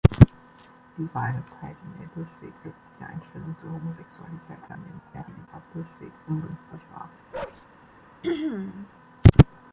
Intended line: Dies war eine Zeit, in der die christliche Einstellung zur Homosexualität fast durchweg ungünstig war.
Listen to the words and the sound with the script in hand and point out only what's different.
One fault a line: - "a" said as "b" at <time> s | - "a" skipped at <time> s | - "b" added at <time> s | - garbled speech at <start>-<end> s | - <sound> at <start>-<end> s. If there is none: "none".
- "die" said as "durchweg" at 2.1 s
- garbled speech at 4.7-5.5 s
- bark at 7.3-7.7 s
- throat clearing at 8.2-8.9 s